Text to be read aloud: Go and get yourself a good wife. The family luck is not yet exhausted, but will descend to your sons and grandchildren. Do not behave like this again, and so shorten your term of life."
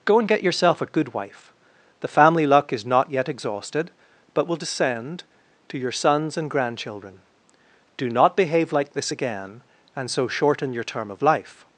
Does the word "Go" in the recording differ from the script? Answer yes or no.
no